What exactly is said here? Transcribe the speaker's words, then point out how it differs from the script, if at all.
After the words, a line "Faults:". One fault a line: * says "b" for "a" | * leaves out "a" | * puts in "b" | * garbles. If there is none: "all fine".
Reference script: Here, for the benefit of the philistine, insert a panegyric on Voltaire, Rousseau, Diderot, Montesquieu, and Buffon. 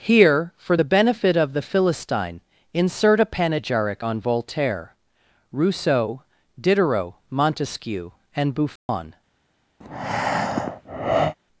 Here, for the benefit of the philistine, insert a panegyric on Voltaire, Rousseau, Diderot, Montesquieu, and Buffon.
Faults:
all fine